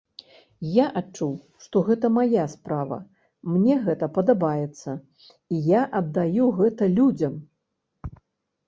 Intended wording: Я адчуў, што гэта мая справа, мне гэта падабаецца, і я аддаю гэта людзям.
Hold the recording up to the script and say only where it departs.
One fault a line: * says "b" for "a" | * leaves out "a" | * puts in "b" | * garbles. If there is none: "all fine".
all fine